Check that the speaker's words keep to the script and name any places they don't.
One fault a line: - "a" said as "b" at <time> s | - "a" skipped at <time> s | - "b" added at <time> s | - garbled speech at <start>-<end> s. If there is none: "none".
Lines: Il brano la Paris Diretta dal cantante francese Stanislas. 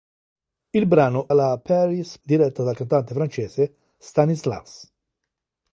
none